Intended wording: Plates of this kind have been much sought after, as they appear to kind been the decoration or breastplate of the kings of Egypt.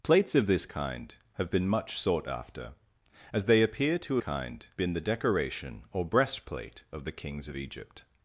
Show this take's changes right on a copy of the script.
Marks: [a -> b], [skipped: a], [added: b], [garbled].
Plates of this kind have been much sought after, as they appear to kind been the decoration or breastplate of the kings of Egypt.